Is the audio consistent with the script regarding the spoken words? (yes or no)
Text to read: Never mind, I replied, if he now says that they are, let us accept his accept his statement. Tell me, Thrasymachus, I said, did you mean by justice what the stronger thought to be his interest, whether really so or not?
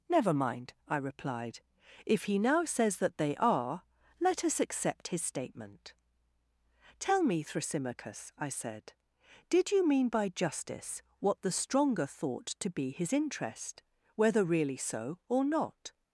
no